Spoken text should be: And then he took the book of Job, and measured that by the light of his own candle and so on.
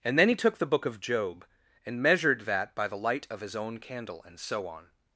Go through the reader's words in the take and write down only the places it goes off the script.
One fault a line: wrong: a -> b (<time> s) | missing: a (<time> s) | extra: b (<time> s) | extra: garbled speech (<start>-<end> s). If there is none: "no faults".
no faults